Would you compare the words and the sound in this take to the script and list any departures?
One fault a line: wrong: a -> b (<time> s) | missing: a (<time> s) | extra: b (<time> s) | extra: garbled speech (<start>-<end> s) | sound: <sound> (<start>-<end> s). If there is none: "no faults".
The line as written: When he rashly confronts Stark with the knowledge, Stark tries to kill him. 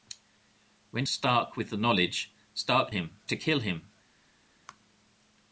missing: he rashly confronts (1.1 s)
wrong: tries -> him (2.9 s)